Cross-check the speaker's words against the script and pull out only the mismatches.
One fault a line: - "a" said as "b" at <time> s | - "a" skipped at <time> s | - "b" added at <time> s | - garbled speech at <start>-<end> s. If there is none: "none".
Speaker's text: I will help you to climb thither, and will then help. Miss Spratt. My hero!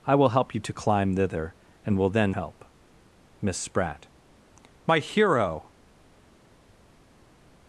none